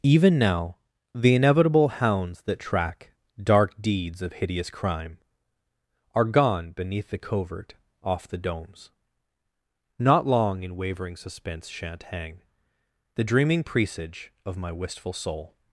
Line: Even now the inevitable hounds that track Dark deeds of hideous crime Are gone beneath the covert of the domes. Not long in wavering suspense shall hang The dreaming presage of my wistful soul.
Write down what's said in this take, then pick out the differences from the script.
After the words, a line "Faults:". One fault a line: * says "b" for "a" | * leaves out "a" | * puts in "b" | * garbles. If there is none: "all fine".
Even now the inevitable hounds that track Dark deeds of hideous crime Are gone beneath the covert off the domes. Not long in wavering suspense shan't hang The dreaming presage of my wistful soul.
Faults:
* says "off" for "of"
* says "shan't" for "shall"